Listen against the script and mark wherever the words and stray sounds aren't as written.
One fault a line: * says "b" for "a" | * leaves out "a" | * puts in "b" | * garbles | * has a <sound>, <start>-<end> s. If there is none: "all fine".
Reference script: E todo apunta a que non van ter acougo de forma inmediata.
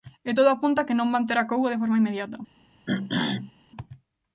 * has a throat clearing, 2.9-3.5 s